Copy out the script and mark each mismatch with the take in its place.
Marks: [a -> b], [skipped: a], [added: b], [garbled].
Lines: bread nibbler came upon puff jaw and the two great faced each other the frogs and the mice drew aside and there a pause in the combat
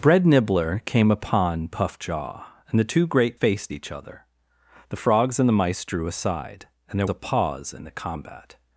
bread nibbler came upon puff jaw and the two great faced each other the frogs and the mice drew aside and there a pause in the combat